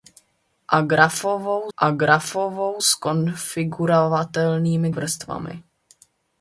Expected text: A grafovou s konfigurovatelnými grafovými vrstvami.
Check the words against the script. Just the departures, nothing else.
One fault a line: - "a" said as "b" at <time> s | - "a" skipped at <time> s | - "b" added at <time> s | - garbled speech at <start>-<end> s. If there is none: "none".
- "a grafovou" added at 1.8 s
- "grafovými" skipped at 4.9 s